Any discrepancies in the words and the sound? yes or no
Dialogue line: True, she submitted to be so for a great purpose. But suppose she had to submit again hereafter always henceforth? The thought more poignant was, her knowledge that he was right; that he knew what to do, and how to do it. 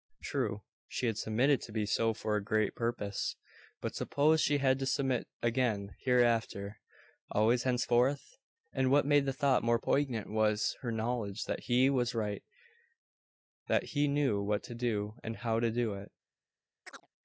yes